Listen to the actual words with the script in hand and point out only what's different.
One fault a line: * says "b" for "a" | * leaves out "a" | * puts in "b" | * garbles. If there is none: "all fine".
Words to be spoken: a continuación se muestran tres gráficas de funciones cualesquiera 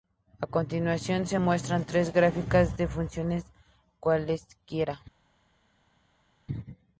all fine